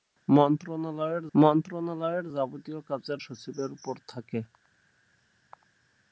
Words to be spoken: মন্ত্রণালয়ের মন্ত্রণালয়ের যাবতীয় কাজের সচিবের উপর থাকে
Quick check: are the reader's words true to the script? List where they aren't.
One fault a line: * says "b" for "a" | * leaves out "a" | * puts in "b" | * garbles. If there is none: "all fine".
all fine